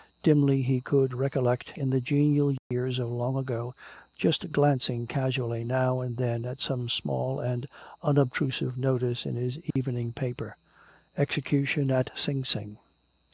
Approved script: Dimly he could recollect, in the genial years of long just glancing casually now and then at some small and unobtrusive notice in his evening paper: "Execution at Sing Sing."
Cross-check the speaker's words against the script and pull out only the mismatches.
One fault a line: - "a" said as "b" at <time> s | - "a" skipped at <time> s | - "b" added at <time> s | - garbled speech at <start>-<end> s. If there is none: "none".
- "ago" added at 3.4 s